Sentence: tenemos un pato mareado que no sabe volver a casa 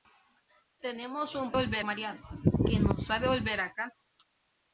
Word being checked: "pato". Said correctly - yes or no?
no